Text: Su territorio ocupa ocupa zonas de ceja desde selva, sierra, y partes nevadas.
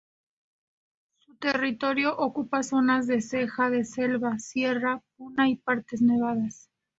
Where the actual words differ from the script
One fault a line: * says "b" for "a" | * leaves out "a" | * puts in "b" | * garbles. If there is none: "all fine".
* leaves out "ocupa"
* says "de" for "desde"
* puts in "puna"